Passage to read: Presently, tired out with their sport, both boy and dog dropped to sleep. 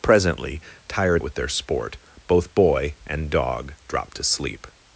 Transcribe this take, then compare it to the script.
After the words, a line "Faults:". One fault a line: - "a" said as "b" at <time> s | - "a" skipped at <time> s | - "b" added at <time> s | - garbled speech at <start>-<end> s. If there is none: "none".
Presently, tired with their sport, both boy and dog dropped to sleep.
Faults:
- "out" skipped at 1.2 s